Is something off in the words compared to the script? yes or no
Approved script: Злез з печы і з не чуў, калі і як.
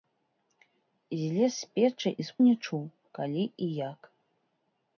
no